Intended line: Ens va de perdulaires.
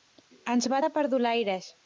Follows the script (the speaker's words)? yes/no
yes